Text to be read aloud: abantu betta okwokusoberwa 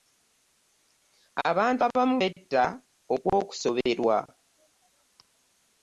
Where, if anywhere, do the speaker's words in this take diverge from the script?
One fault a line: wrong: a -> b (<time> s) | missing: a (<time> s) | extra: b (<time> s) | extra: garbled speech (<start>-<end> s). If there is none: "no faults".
extra: abamu (1.9 s)